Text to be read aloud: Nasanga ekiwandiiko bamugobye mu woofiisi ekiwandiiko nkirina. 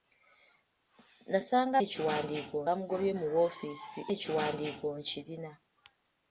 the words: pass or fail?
pass